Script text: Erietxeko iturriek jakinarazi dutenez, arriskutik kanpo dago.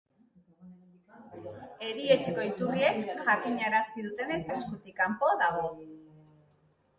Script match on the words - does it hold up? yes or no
yes